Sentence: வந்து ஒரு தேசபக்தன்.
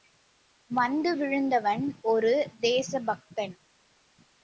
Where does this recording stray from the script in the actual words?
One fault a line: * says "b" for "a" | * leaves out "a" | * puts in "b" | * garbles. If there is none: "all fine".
* puts in "விழுந்தவன்"